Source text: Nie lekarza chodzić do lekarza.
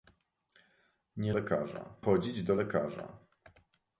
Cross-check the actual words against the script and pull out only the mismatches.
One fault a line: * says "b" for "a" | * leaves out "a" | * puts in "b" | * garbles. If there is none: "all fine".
all fine